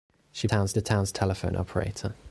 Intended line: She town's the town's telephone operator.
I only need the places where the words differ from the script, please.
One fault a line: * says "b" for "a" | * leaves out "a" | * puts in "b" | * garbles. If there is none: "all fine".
all fine